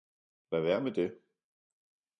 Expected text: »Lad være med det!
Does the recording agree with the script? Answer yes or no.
yes